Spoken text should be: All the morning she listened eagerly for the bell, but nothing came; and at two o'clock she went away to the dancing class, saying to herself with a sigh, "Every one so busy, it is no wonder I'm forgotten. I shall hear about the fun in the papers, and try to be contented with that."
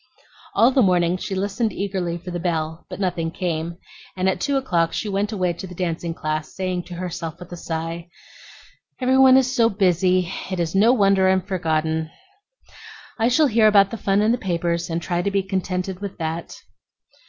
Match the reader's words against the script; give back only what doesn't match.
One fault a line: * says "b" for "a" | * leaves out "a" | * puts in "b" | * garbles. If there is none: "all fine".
* puts in "is"